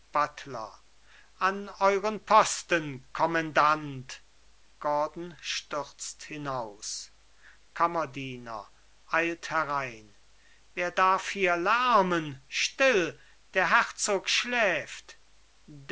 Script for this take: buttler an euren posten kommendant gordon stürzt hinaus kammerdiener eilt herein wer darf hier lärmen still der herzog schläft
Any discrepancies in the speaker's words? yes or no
no